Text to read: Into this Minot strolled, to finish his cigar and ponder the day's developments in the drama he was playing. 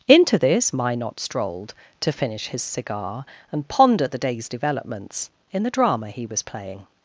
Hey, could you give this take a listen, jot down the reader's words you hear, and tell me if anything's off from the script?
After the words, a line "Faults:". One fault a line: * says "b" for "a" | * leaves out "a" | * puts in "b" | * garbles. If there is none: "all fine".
Into this Minot strolled, to finish his cigar and ponder the day's developments in the drama he was playing.
Faults:
all fine